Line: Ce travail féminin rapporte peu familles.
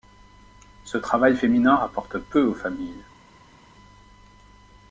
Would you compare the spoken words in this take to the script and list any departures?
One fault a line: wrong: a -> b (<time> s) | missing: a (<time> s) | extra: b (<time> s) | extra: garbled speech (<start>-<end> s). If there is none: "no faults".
extra: aux (2.4 s)